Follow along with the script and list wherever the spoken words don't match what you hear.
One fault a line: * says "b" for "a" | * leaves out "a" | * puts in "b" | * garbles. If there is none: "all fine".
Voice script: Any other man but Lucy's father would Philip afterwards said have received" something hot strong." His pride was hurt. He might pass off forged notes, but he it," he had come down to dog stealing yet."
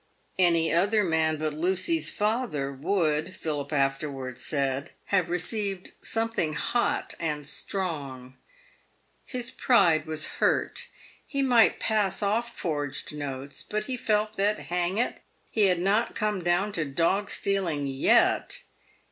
* puts in "and"
* puts in "felt that hang"
* puts in "not"